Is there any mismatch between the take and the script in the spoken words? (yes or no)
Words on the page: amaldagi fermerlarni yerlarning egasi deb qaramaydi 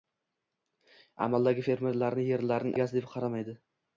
no